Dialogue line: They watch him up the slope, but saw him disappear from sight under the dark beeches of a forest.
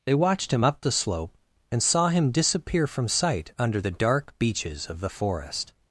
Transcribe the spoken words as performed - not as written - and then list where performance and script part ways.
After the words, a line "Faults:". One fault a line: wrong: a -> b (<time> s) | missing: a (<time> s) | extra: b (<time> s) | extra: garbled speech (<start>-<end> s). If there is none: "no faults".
They watched him up the slope, and saw him disappear from sight under the dark beeches of the forest.
Faults:
wrong: watch -> watched (0.1 s)
wrong: but -> and (1.7 s)
wrong: a -> the (5.0 s)